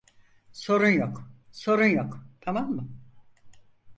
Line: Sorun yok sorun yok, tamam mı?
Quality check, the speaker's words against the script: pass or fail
pass